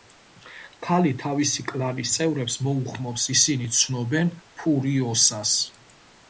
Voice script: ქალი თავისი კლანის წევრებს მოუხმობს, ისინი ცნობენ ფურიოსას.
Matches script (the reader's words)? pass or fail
pass